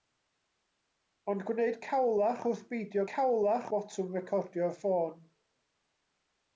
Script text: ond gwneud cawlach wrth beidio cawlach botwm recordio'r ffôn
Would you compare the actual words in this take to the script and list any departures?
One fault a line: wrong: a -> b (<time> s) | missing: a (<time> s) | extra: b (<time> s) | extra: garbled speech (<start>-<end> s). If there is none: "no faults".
no faults